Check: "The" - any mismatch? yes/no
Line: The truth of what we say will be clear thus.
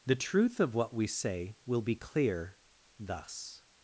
no